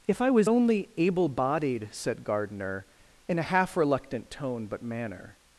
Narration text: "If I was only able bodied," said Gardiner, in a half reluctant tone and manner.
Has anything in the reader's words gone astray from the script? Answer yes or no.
yes